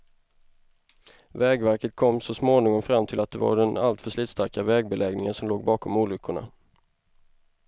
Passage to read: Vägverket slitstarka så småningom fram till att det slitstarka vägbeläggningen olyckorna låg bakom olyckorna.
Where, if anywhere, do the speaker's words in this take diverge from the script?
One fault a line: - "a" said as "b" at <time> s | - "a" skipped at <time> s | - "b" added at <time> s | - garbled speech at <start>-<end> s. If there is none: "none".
- "slitstarka" said as "kom" at 1.9 s
- "var den alltför" added at 3.4 s
- "olyckorna" said as "som" at 5.3 s